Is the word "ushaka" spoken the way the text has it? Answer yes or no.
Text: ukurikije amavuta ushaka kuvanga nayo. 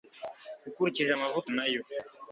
no